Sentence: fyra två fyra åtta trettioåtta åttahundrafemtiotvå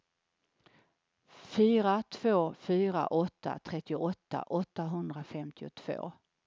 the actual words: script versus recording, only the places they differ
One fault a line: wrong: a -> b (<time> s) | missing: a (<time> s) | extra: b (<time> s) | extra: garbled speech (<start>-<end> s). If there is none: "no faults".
no faults